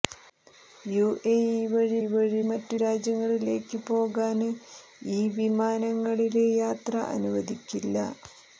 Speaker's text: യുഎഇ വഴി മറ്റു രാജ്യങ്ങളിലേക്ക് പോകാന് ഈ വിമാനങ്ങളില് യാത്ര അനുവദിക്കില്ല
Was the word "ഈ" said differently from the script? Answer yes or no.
no